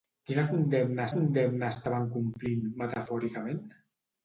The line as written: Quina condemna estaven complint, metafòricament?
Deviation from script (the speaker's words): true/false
true